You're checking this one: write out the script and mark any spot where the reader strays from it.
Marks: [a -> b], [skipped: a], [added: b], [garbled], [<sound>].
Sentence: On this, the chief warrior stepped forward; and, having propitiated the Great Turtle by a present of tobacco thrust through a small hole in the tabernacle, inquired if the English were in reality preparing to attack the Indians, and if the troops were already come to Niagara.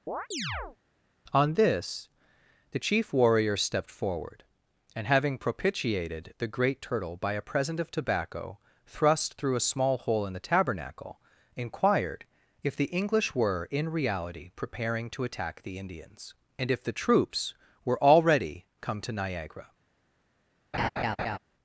[chirp] On this, the chief warrior stepped forward; and, having propitiated the Great Turtle by a present of tobacco thrust through a small hole in the tabernacle, inquired if the English were in reality preparing to attack the Indians, and if the troops were already come to Niagara. [laugh]